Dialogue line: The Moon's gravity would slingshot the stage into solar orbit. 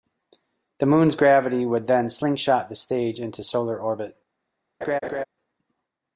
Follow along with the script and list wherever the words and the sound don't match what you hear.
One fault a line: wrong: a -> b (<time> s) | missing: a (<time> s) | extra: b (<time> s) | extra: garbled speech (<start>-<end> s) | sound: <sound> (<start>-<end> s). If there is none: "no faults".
extra: then (1.9 s)
sound: laugh (4.8-5.2 s)